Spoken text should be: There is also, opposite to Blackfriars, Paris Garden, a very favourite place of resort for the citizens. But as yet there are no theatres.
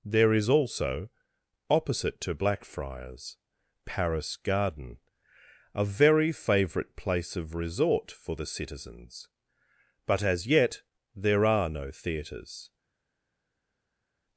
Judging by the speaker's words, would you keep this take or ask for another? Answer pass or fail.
pass